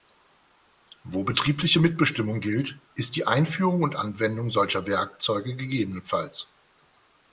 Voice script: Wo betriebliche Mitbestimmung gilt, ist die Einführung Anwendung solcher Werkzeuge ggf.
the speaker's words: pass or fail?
fail